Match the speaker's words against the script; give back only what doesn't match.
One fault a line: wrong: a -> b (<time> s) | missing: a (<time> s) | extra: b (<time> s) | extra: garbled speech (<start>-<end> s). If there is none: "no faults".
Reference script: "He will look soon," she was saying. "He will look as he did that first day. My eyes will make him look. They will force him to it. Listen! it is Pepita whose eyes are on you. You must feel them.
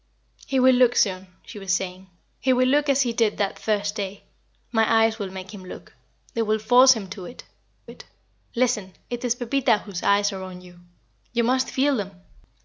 extra: it (7.9 s)